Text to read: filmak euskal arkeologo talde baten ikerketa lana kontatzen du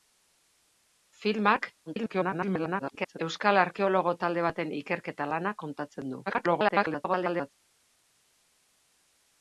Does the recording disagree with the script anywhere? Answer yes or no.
yes